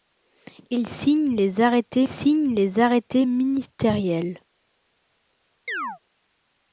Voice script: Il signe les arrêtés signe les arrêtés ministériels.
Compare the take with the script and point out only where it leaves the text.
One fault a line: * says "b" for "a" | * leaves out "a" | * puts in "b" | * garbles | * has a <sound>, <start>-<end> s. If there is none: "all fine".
* has a chirp, 5.7-6.0 s